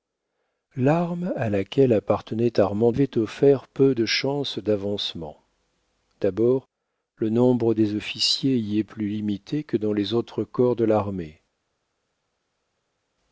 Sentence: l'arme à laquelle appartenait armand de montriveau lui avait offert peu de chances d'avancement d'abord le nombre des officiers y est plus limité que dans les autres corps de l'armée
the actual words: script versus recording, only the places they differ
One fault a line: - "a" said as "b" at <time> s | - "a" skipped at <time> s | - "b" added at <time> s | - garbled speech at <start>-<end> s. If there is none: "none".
- "de montriveau lui" skipped at 2.9 s